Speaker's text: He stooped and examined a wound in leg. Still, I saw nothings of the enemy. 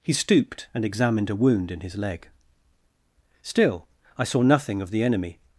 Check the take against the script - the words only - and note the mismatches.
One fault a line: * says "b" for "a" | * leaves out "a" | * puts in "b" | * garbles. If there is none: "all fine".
* puts in "his"
* says "nothing" for "nothings"